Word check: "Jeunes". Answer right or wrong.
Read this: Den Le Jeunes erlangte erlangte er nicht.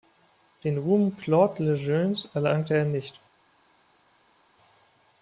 right